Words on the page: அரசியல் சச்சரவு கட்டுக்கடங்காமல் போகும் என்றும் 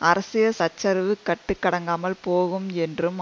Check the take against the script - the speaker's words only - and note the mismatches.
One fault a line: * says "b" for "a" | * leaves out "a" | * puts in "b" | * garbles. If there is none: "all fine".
all fine